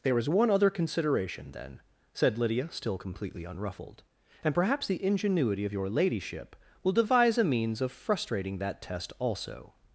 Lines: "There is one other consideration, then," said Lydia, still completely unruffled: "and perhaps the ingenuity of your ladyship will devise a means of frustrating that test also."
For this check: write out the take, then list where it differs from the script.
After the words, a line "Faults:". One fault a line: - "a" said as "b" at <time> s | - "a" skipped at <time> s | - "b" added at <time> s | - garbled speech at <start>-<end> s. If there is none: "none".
"There is one other consideration, then," said Lydia, still completely unruffled: "and perhaps the ingenuity of your ladyship will devise a means of frustrating that test also."
Faults:
none